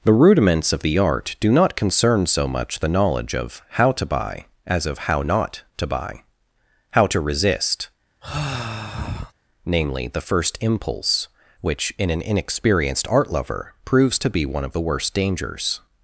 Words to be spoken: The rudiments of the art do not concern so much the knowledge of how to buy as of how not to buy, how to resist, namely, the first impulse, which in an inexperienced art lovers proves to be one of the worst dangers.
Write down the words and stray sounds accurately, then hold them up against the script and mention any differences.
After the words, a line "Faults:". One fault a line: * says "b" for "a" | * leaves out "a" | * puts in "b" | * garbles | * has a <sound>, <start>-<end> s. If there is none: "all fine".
The rudiments of the art do not concern so much the knowledge of how to buy as of how not to buy, how to resist, namely, the first impulse, which in an inexperienced art lover proves to be one of the worst dangers.
Faults:
* has a sigh, 8.2-9.3 s
* says "lover" for "lovers"